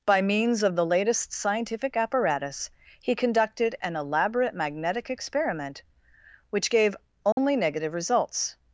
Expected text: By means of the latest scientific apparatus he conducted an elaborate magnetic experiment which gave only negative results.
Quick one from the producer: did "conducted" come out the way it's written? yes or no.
yes